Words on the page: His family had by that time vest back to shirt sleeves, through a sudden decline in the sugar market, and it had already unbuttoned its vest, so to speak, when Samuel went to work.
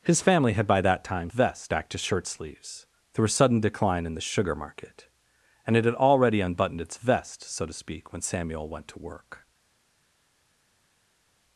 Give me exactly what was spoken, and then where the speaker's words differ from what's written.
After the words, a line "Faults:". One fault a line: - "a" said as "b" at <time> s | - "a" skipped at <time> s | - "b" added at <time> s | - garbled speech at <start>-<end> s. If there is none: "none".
His family had by that time vest back to shirt sleeves, through a sudden decline in the sugar market, and it had already unbuttoned its vest, so to speak, when Samuel went to work.
Faults:
none